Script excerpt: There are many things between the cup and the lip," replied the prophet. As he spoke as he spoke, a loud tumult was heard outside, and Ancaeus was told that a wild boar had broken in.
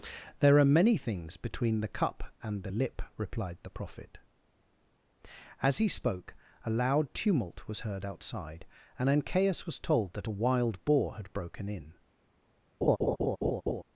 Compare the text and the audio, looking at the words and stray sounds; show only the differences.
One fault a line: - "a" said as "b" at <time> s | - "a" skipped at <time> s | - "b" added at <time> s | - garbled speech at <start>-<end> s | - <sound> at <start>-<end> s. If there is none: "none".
- "as he spoke" skipped at 6.3 s
- laugh at 12.8-13.8 s